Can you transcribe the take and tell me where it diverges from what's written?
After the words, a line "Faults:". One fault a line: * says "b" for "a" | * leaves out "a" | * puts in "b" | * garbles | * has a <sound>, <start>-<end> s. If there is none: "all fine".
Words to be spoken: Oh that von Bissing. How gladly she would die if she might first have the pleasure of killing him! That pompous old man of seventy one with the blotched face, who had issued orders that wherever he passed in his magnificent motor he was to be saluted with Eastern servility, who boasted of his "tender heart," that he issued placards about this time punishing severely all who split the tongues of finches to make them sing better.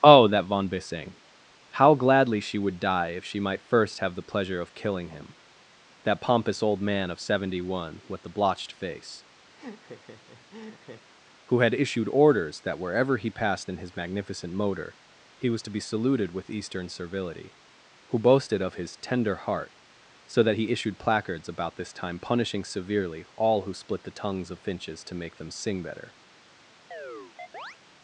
Oh that von Bissing. How gladly she would die if she might first have the pleasure of killing him! That pompous old man of seventy one with the blotched face, who had issued orders that wherever he passed in his magnificent motor he was to be saluted with Eastern servility, who boasted of his "tender heart," so that he issued placards about this time punishing severely all who split the tongues of finches to make them sing better.
Faults:
* has a laugh, 9.5-11.1 s
* puts in "so"
* has a chirp, 26.9-27.8 s